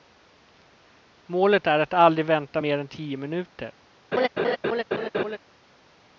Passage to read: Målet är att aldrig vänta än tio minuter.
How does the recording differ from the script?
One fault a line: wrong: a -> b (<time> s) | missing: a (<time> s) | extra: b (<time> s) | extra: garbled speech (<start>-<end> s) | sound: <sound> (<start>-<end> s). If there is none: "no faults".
extra: mer (2.6 s)
sound: laugh (4.1-5.4 s)